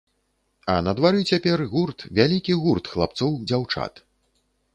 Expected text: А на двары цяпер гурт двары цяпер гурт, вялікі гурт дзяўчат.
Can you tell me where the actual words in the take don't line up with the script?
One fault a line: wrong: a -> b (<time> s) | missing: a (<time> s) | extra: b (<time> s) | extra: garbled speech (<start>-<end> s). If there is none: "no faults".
wrong: двары цяпер -> вялікі (2.2 s)
wrong: вялікі гурт -> хлапцоў (3.0 s)